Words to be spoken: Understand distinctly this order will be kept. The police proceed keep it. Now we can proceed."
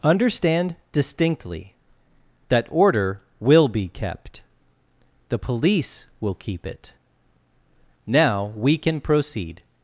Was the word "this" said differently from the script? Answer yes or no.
yes